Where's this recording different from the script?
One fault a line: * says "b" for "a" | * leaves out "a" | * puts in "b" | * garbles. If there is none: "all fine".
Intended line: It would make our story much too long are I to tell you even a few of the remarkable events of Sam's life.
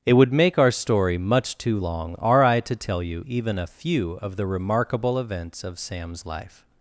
all fine